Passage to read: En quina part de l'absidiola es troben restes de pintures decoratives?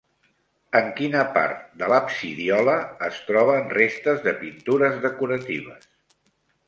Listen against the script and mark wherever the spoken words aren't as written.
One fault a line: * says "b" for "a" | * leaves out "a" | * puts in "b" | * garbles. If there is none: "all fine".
all fine